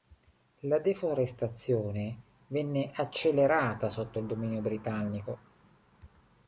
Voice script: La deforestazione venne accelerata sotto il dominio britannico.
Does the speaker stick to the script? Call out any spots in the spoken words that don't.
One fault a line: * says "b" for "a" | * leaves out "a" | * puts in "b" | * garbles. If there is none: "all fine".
all fine